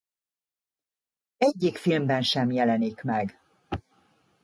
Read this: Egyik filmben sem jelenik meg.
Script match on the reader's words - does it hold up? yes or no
yes